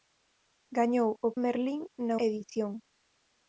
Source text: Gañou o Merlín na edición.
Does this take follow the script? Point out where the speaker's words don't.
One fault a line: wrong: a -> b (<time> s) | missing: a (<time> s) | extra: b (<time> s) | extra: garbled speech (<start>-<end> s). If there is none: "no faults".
no faults